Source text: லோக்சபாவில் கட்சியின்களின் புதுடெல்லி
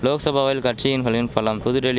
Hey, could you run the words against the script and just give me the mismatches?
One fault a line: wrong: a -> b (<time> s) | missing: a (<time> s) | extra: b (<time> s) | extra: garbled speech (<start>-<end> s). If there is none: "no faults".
extra: பலம் (1.3 s)